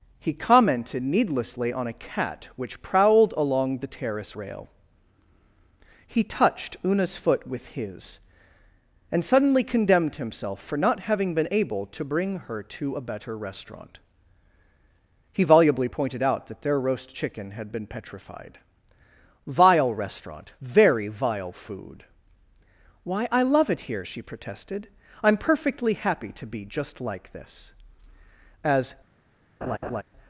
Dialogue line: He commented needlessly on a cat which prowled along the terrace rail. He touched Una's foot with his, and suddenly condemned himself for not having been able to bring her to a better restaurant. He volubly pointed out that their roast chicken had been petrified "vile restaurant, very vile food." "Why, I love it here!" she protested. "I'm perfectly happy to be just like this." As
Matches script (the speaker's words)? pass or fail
pass